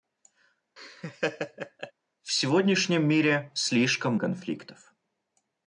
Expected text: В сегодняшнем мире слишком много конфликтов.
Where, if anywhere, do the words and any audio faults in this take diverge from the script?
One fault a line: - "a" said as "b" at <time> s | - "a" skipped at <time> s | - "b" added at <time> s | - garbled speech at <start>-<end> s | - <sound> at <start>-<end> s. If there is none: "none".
- laugh at 0.8-1.9 s
- "много" skipped at 4.1 s